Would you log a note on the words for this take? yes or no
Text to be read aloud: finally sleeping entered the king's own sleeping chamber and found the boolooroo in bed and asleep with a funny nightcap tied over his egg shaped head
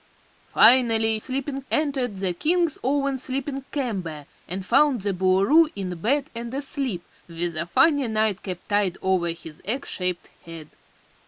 no